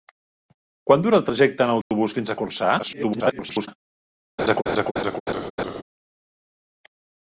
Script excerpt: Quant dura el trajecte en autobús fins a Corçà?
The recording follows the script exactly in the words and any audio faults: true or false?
false